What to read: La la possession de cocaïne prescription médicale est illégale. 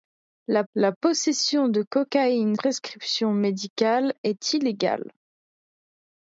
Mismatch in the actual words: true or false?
false